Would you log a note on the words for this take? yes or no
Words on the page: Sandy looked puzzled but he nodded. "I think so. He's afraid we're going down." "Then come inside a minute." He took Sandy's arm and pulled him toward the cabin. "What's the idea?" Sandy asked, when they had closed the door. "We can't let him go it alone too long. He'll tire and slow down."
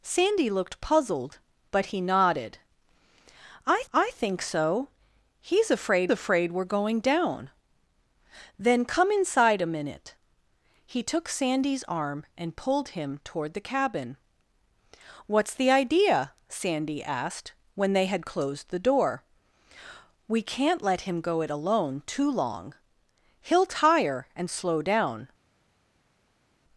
yes